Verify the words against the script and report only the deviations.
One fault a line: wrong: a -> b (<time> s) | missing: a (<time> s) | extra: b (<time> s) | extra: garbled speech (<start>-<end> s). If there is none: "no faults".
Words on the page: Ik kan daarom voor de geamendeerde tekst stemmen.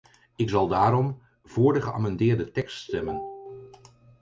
wrong: kan -> zal (0.5 s)